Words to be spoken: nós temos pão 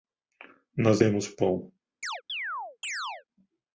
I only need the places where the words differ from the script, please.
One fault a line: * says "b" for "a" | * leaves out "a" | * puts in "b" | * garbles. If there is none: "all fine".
all fine